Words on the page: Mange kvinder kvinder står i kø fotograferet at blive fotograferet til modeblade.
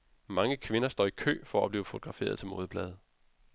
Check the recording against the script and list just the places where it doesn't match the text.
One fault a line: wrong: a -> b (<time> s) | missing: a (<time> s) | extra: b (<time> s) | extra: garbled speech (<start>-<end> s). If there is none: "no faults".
missing: kvinder (0.9 s)
wrong: fotograferet -> for (1.4 s)